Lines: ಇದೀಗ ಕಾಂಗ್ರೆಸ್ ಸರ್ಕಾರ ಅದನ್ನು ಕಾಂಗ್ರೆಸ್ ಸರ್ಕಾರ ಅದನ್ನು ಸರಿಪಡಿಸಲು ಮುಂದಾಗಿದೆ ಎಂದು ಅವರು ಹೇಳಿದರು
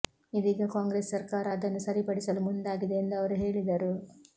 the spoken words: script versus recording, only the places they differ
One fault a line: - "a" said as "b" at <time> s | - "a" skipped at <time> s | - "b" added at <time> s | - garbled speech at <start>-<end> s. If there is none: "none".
- "ಕಾಂಗ್ರೆಸ್ ಸರ್ಕಾರ ಅದನ್ನು" skipped at 1.8 s